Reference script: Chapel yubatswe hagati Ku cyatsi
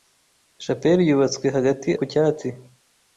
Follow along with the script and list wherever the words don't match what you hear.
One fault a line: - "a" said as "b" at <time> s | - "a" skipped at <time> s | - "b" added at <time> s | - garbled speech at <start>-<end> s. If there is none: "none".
none